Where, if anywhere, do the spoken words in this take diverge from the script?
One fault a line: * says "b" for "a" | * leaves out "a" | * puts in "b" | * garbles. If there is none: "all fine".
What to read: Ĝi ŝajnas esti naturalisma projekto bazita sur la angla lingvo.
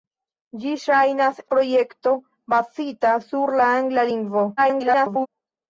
* leaves out "esti naturalisma"
* garbles